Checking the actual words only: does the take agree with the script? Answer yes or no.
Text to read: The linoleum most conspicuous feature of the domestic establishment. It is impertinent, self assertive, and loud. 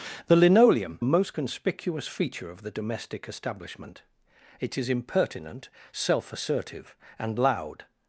yes